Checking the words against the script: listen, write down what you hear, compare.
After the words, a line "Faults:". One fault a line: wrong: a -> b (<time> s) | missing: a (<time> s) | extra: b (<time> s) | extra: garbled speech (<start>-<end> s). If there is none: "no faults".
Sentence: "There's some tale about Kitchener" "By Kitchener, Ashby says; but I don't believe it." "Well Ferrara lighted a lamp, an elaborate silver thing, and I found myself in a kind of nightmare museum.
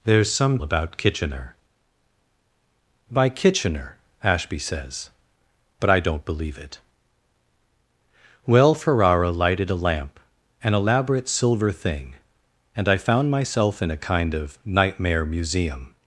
"There's some about Kitchener" "By Kitchener, Ashby says; but I don't believe it." "Well Ferrara lighted a lamp, an elaborate silver thing, and I found myself in a kind of nightmare museum.
Faults:
missing: tale (0.6 s)